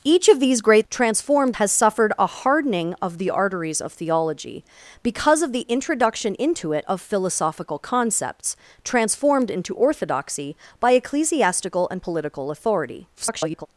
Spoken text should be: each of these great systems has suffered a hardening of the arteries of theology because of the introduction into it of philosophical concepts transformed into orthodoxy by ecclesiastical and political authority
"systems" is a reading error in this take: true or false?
true